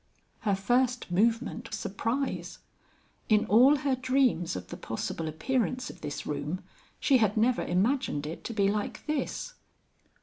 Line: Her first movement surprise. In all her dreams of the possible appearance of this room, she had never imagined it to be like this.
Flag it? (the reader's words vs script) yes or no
no